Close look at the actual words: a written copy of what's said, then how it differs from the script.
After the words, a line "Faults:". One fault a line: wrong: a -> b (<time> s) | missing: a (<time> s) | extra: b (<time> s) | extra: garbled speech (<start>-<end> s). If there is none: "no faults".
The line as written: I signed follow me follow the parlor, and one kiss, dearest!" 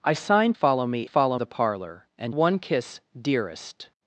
I signed follow me follow the parlor, and one kiss, dearest!"
Faults:
no faults